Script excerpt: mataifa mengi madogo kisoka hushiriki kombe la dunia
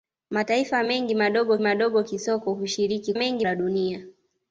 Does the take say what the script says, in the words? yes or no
no